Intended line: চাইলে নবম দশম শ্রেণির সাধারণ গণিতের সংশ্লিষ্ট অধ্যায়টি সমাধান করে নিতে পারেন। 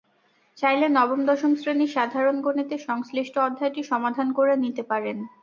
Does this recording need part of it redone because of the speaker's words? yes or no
no